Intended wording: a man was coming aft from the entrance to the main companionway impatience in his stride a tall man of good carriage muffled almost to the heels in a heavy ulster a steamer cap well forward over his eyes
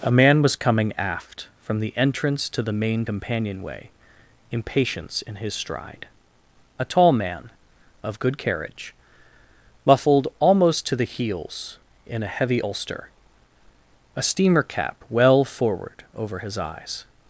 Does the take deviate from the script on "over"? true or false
false